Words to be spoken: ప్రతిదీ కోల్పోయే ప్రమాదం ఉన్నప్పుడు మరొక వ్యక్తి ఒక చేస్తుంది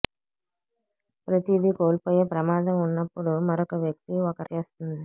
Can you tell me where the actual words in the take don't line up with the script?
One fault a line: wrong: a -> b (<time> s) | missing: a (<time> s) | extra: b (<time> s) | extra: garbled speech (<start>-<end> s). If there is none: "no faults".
no faults